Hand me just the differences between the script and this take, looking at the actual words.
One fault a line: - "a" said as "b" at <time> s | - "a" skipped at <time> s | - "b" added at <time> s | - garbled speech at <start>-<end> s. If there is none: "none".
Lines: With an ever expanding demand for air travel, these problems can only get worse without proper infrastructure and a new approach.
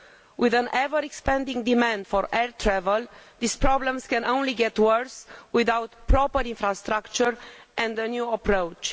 none